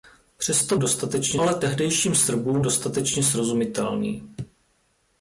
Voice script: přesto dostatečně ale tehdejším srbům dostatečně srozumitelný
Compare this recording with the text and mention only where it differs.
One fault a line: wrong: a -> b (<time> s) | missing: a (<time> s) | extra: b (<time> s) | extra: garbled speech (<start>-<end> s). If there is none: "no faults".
no faults